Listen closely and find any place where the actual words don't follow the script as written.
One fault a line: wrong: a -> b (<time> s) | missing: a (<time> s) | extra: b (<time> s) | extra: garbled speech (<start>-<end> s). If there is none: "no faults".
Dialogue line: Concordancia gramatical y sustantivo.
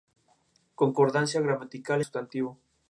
no faults